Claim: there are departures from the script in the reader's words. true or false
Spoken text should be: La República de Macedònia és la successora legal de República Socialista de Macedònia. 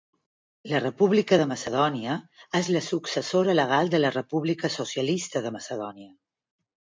true